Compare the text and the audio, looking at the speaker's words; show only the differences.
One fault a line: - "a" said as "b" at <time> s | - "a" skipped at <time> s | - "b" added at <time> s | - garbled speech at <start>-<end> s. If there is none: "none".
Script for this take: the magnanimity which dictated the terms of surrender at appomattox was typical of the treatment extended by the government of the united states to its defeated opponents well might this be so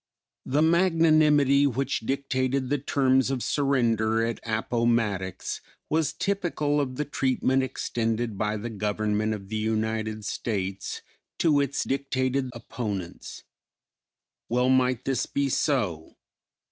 - "defeated" said as "dictated" at 11.9 s